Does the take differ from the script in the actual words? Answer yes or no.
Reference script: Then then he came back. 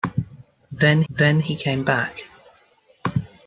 no